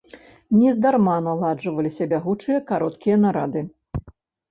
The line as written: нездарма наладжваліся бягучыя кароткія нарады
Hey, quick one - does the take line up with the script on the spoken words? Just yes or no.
yes